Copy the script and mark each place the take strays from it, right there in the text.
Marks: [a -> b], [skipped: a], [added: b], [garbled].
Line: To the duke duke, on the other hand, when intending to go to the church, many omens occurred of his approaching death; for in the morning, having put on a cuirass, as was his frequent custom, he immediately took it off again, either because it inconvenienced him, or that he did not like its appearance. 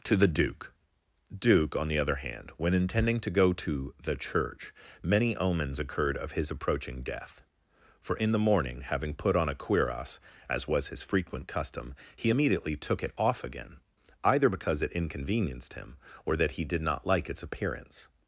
To the duke duke, on the other hand, when intending to go to the church, many omens occurred of his approaching death; for in the morning, having put on a cuirass, as was his frequent custom, he immediately took it off again, either because it inconvenienced him, or that he did not like its appearance.